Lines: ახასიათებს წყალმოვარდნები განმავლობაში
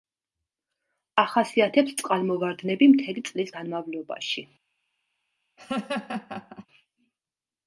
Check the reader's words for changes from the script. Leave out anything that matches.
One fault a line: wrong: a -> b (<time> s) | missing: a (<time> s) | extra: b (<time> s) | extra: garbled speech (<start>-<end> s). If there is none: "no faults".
extra: მთელი წლის (2.9 s)